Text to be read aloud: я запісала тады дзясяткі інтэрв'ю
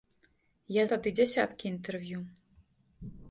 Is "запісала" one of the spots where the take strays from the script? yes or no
yes